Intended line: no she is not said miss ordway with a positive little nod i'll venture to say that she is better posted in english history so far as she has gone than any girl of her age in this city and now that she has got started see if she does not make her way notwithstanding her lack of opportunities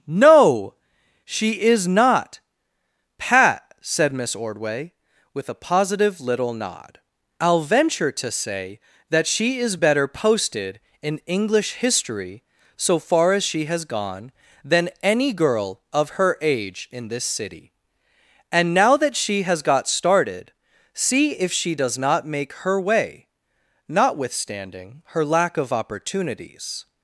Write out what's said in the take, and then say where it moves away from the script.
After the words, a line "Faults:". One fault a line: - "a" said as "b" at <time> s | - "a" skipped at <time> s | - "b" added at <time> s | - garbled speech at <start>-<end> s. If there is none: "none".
no she is not pat said miss ordway with a positive little nod i'll venture to say that she is better posted in english history so far as she has gone than any girl of her age in this city and now that she has got started see if she does not make her way notwithstanding her lack of opportunities
Faults:
- "pat" added at 3.2 s